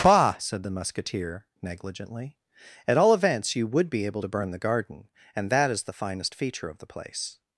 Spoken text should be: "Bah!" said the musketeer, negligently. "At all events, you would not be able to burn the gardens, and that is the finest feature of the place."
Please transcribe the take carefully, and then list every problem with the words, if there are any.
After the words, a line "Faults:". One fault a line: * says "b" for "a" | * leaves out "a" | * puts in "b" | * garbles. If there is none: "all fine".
"Bah!" said the musketeer, negligently. "At all events, you would be able to burn the garden, and that is the finest feature of the place."
Faults:
* leaves out "not"
* says "garden" for "gardens"